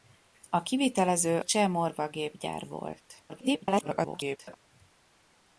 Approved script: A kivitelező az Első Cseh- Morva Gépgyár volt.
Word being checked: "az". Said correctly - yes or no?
no